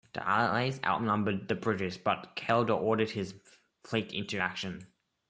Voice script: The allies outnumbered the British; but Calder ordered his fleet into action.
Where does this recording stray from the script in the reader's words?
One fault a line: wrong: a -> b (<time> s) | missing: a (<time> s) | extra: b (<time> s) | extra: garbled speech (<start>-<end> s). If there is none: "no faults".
no faults